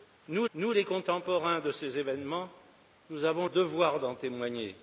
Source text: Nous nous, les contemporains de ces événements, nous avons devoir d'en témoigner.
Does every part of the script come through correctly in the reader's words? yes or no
yes